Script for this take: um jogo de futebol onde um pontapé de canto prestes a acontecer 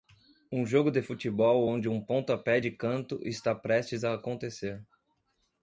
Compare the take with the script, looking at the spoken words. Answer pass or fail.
fail